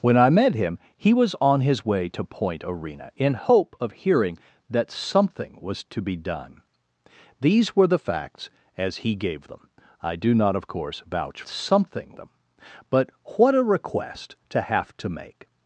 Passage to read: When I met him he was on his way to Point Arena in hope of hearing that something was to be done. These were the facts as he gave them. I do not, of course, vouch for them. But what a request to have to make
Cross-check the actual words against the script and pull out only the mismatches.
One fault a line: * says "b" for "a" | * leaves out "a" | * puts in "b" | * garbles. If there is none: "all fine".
* says "something" for "for"